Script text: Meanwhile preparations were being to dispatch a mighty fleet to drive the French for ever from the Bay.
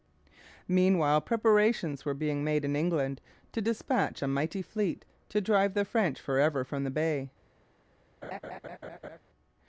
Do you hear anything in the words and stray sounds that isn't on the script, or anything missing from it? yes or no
yes